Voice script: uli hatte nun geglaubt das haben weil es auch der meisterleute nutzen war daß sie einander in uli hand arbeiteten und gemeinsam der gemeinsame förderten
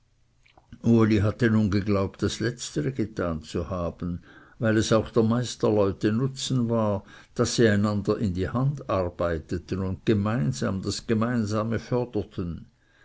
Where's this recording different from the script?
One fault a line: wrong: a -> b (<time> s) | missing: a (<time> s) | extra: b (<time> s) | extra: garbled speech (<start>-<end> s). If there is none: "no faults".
extra: letztere getan zu (2.4 s)
wrong: uli -> die (8.3 s)
wrong: der -> das (10.8 s)